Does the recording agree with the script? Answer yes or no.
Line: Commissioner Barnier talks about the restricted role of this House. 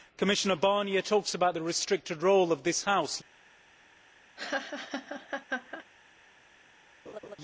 yes